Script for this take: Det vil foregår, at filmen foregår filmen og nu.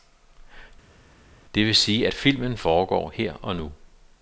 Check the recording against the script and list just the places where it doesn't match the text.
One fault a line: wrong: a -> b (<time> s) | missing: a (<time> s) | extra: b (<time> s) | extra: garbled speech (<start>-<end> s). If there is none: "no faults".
wrong: foregår -> sige (1.7 s)
wrong: filmen -> her (3.1 s)